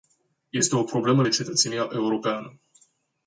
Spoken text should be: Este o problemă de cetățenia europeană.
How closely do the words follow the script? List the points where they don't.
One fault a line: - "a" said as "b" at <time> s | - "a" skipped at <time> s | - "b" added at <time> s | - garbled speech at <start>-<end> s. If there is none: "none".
none